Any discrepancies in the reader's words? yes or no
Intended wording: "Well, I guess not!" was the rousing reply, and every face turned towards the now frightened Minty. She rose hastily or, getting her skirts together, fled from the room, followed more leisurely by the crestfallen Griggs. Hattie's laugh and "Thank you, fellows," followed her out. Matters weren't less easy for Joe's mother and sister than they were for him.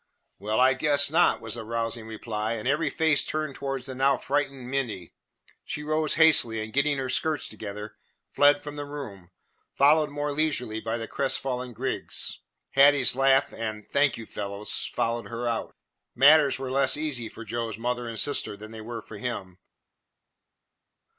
yes